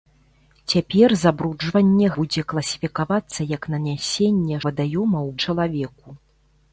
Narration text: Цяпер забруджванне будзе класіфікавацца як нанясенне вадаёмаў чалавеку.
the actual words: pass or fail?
pass